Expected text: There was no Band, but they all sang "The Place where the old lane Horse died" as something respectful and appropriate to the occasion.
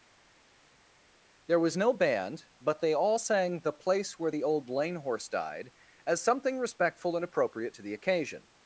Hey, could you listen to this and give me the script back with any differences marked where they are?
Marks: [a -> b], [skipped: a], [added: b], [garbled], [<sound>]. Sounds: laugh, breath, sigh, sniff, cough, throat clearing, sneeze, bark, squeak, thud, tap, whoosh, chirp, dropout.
There was no Band, but they all sang "The Place where the old lane Horse died" as something respectful and appropriate to the occasion.